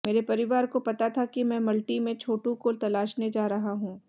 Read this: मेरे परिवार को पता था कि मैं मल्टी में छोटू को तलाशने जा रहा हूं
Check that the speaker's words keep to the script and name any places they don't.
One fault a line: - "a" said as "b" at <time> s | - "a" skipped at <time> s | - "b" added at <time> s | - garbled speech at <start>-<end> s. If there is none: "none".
none